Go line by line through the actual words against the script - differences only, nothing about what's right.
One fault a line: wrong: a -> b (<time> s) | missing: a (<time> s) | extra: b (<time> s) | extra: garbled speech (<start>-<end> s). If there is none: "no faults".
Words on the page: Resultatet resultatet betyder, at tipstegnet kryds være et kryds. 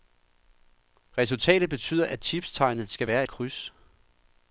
missing: resultatet (1.7 s)
wrong: kryds -> skal (2.9 s)